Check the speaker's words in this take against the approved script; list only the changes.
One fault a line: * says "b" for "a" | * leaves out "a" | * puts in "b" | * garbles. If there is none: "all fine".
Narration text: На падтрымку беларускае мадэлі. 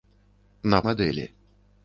* leaves out "падтрымку беларускае"